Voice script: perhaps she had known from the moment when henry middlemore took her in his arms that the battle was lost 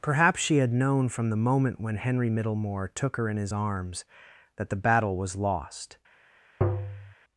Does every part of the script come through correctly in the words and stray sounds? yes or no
no